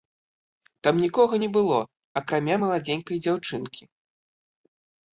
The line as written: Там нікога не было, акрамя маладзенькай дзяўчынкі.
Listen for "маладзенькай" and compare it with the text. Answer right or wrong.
right